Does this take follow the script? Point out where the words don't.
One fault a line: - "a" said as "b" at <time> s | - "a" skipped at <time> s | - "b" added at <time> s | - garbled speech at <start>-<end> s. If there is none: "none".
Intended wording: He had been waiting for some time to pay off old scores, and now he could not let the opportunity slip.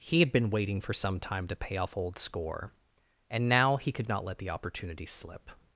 - "scores" said as "score" at 2.2 s